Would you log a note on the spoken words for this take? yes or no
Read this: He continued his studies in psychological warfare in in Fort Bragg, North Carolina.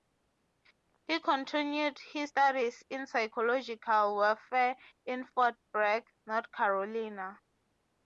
yes